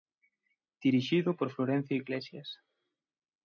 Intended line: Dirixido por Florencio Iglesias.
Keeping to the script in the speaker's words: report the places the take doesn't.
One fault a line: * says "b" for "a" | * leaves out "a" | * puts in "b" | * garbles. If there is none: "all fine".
all fine